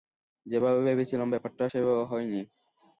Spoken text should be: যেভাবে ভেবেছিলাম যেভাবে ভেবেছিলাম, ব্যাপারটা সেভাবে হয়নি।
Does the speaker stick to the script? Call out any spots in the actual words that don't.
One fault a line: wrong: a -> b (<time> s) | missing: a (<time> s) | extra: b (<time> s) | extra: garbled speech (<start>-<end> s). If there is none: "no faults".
missing: যেভাবে ভেবেছিলাম (1.3 s)